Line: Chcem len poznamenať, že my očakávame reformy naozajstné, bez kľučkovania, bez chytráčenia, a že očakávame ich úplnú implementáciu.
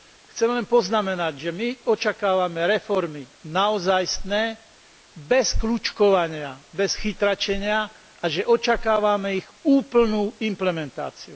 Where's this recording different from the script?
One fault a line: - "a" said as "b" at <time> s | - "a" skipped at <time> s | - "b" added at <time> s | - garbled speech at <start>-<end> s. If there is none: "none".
none